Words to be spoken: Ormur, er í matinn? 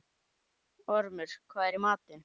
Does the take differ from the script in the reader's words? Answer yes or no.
yes